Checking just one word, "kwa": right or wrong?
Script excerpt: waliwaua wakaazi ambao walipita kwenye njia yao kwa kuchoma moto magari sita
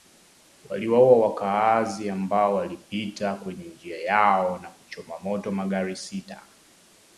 wrong